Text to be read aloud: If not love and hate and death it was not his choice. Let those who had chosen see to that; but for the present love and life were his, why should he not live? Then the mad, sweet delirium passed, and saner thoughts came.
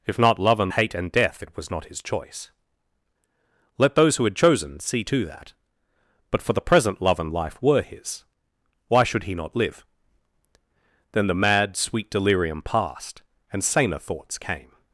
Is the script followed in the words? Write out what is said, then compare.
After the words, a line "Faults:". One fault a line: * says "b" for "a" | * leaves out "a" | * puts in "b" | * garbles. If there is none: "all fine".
If not love and hate and death it was not his choice. Let those who had chosen see to that; but for the present love and life were his, why should he not live? Then the mad, sweet delirium passed, and saner thoughts came.
Faults:
all fine